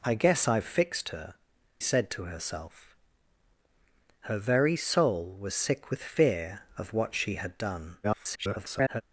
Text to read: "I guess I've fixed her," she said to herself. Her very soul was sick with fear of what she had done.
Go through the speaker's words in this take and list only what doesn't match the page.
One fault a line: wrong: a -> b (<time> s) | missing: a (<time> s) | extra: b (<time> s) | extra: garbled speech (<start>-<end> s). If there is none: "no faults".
missing: she (1.4 s)
extra: garbled speech (8.0-9.0 s)